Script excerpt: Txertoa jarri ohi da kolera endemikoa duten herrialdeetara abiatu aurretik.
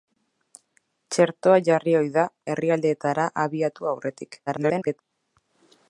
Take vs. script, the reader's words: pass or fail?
fail